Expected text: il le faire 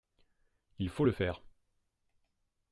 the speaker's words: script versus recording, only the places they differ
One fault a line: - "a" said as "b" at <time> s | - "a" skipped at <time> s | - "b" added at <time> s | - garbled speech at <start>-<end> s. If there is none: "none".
- "faut" added at 0.9 s